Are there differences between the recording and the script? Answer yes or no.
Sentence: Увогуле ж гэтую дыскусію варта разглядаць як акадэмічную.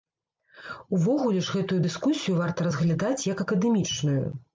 no